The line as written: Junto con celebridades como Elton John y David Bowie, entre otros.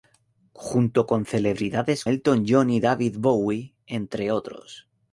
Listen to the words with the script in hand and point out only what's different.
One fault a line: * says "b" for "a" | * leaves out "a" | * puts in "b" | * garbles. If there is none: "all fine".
* leaves out "como"